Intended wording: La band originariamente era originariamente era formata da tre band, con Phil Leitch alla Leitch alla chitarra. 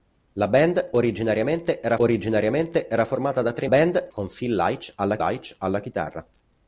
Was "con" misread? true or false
false